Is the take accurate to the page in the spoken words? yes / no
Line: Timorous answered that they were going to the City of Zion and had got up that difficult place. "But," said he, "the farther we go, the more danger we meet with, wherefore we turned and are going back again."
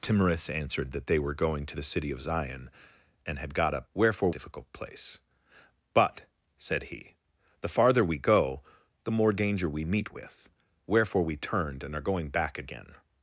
no